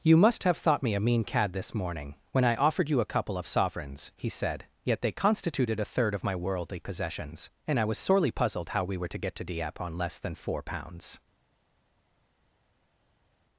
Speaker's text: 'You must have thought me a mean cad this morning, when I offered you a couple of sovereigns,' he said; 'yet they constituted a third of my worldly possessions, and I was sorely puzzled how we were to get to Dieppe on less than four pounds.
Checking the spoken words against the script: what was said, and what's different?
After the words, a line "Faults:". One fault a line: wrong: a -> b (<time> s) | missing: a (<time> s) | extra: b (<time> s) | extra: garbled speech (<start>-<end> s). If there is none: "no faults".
'You must have thought me a mean cad this morning, when I offered you a couple of sovereigns,' he said; 'yet they constituted a third of my worldly possessions, and I was sorely puzzled how we were to get to Dieppe on less than four pounds.
Faults:
no faults